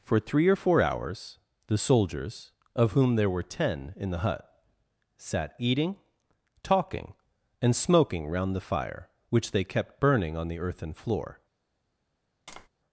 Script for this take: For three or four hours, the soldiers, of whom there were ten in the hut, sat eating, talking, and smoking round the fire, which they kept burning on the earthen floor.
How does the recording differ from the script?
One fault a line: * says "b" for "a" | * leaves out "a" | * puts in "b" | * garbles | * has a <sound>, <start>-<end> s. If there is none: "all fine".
* has a tap, 12.5-12.7 s